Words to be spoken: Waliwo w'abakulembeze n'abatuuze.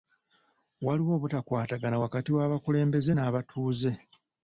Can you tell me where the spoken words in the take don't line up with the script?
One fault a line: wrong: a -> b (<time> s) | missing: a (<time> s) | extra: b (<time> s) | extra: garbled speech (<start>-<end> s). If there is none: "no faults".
extra: obutakwatagana wakati (1.2 s)